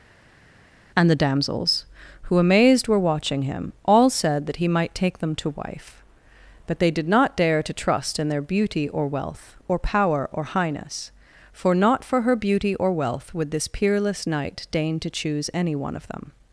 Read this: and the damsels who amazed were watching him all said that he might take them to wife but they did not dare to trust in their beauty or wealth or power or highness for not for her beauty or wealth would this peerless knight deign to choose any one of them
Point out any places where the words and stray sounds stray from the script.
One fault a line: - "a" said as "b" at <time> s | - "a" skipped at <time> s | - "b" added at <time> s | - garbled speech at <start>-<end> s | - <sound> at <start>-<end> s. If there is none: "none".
none